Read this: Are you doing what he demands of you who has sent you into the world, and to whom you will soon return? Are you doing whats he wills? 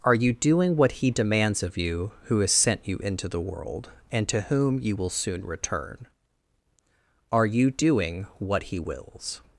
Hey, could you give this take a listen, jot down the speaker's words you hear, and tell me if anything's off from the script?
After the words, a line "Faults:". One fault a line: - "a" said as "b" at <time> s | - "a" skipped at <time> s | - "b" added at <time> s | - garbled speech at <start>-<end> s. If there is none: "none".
Are you doing what he demands of you who has sent you into the world, and to whom you will soon return? Are you doing what he wills?
Faults:
- "whats" said as "what" at 8.4 s